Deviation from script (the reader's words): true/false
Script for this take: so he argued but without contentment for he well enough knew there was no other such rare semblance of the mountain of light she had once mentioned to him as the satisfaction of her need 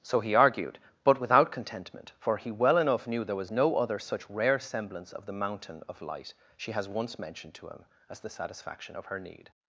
true